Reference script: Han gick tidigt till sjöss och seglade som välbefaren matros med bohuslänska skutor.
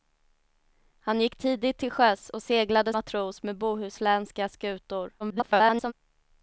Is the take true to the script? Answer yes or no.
no